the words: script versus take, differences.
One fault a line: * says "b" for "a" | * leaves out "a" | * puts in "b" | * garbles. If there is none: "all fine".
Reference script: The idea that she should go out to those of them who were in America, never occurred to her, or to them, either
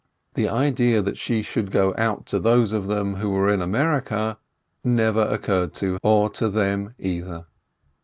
* leaves out "her"